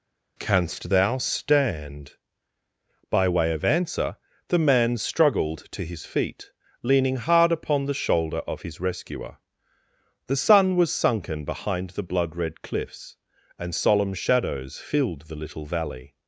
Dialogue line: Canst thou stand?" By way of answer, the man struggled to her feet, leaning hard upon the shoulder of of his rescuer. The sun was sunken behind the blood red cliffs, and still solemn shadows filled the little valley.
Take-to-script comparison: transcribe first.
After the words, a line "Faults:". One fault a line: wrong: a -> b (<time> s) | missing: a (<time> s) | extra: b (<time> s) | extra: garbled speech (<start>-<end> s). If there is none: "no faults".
Canst thou stand?" By way of answer, the man struggled to his feet, leaning hard upon the shoulder of his rescuer. The sun was sunken behind the blood red cliffs, and solemn shadows filled the little valley.
Faults:
wrong: her -> his (5.8 s)
missing: of (8.6 s)
missing: still (13.7 s)